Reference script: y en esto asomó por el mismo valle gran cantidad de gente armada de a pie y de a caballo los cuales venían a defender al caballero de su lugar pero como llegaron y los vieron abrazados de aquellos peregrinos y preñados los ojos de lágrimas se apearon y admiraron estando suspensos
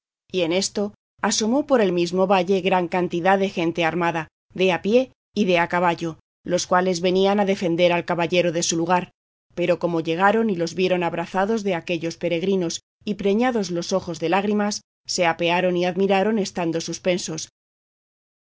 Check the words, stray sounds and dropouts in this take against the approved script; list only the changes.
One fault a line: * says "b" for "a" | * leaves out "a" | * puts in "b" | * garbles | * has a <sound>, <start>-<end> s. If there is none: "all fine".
all fine